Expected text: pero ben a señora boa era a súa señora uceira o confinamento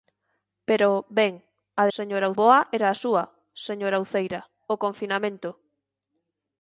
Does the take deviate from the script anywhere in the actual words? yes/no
no